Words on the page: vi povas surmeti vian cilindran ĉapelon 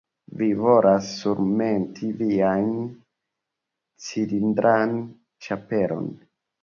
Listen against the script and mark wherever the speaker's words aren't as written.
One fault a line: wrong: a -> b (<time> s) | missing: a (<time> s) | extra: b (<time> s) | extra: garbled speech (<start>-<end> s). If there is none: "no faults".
wrong: povas -> volas (0.6 s)